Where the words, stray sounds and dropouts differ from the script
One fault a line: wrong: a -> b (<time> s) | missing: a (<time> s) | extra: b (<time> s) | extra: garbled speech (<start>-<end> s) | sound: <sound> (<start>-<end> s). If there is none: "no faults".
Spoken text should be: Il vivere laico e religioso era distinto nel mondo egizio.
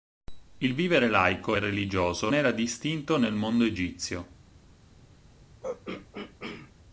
sound: throat clearing (5.6-6.7 s)